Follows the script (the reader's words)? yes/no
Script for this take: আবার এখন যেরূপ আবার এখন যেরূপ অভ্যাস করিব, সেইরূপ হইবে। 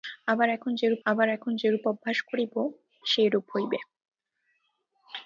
yes